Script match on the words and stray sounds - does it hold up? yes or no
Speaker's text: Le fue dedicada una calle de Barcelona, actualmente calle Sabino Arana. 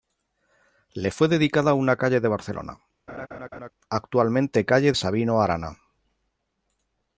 no